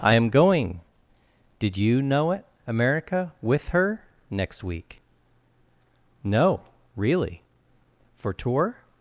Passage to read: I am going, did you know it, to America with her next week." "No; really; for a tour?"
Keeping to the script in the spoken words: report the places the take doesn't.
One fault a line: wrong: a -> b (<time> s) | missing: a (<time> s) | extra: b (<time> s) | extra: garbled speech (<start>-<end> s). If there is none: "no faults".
missing: to (2.4 s)
missing: a (8.3 s)